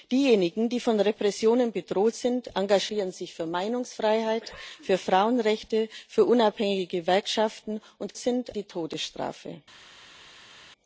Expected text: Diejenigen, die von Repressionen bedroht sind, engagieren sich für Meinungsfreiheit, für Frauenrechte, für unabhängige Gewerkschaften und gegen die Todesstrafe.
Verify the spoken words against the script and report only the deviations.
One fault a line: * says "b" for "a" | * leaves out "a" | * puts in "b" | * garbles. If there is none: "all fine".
* says "sind" for "gegen"